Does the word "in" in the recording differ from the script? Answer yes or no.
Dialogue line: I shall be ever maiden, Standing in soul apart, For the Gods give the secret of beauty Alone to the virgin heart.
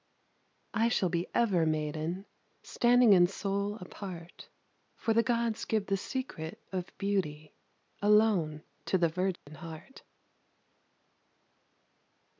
no